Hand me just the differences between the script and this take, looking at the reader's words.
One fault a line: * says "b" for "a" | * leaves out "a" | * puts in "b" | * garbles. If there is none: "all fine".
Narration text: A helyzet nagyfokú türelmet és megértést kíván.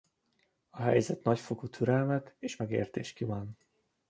all fine